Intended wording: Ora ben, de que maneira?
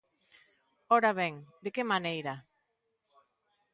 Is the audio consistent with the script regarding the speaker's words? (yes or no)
yes